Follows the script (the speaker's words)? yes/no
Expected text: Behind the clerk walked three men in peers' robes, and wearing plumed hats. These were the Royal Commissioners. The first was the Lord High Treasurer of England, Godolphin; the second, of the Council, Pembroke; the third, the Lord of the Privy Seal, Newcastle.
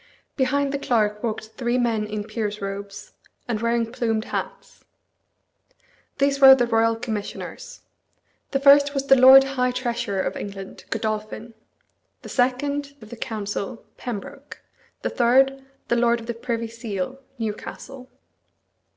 yes